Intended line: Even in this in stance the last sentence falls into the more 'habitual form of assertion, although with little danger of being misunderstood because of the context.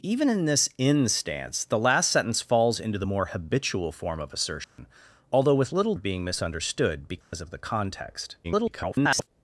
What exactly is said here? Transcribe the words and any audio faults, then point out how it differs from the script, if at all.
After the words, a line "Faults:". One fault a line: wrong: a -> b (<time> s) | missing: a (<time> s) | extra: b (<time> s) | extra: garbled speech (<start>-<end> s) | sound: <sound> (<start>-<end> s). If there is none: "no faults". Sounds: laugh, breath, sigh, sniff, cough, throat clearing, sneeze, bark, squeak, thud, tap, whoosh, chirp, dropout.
Even in this in stance the last sentence falls into the more 'habitual form of assertion, although with little of being misunderstood because of the context. [garbled]
Faults:
sound: dropout (4.6-4.8 s)
missing: danger (5.9 s)
sound: dropout (7.2-7.3 s)
extra: garbled speech (8.4-9.3 s)